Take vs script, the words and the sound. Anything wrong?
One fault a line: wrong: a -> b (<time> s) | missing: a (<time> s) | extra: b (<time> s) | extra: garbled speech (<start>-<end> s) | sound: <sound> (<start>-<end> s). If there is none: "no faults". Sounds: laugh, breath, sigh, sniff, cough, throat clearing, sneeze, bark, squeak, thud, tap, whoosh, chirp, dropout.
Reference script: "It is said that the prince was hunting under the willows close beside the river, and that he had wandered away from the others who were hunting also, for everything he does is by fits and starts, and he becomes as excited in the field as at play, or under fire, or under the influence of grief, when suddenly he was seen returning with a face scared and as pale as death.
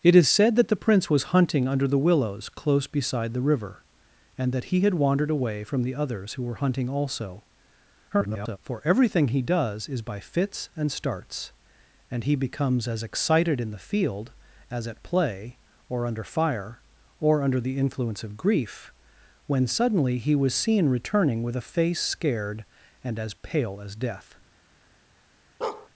extra: garbled speech (8.1-8.6 s)
sound: bark (25.6-25.9 s)